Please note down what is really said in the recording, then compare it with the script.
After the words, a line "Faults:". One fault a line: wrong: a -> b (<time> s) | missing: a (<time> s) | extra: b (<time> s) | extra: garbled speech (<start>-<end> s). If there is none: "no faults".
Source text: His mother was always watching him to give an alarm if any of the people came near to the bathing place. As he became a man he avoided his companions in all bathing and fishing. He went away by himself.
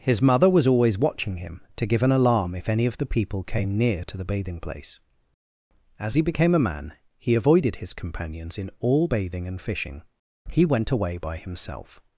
His mother was always watching him to give an alarm if any of the people came near to the bathing place. As he became a man he avoided his companions in all bathing and fishing. He went away by himself.
Faults:
no faults